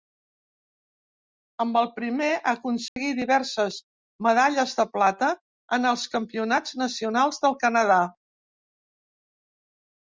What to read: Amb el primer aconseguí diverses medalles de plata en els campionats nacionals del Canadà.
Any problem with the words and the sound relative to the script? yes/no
yes